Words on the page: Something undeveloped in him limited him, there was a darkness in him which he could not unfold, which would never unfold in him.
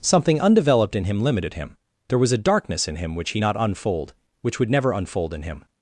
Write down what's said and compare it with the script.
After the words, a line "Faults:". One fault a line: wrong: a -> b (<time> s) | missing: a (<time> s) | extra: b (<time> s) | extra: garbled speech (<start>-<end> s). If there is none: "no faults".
Something undeveloped in him limited him, there was a darkness in him which he not unfold, which would never unfold in him.
Faults:
missing: could (3.4 s)